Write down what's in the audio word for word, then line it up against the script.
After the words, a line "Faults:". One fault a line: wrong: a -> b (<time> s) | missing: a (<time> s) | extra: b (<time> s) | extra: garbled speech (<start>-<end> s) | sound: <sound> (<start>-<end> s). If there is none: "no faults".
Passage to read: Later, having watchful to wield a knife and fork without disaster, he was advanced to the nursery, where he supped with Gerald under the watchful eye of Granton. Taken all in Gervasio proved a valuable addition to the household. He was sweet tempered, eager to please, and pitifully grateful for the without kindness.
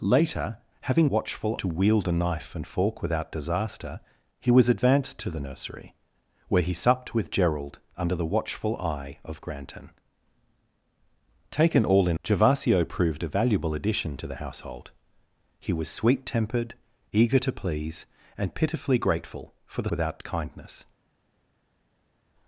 Later, having watchful to wield a knife and fork without disaster, he was advanced to the nursery, where he supped with Gerald under the watchful eye of Granton. Taken all in Gervasio proved a valuable addition to the household. He was sweet tempered, eager to please, and pitifully grateful for the without kindness.
Faults:
no faults